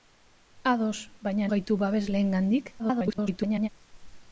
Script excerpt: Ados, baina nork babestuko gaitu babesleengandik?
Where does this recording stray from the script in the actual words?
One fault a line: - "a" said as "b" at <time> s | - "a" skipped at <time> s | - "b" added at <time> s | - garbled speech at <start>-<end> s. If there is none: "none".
- "nork babestuko" skipped at 1.5 s
- garbled speech at 2.8-3.7 s